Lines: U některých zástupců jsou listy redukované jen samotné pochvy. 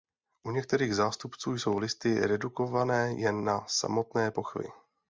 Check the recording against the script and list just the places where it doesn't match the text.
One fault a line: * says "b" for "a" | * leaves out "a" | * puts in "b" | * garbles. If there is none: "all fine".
* puts in "na"